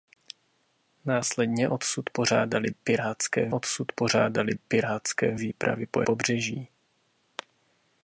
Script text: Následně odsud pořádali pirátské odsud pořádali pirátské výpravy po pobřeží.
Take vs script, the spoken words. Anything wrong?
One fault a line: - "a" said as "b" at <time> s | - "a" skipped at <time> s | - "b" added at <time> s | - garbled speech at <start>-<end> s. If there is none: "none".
none